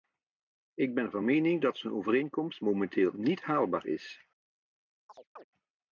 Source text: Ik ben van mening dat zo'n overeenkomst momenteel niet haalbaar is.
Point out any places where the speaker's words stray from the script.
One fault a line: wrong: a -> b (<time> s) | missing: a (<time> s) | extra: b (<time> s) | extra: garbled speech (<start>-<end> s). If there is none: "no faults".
no faults